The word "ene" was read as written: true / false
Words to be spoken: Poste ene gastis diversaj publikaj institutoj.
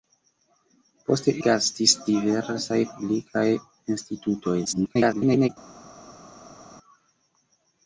false